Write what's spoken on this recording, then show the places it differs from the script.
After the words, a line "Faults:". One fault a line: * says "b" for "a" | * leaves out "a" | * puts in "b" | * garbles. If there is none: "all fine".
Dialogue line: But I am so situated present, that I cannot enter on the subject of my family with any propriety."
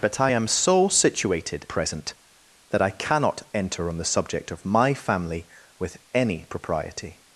But I am so situated present, that I cannot enter on the subject of my family with any propriety."
Faults:
all fine